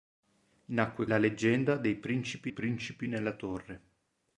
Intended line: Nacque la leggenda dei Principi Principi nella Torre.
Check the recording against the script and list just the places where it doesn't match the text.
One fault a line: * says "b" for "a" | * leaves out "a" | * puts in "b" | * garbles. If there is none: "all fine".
all fine